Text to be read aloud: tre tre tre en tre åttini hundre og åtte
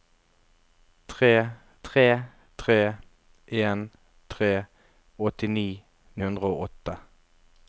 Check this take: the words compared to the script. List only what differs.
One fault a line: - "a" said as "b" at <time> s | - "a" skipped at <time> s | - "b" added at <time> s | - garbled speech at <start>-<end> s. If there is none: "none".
none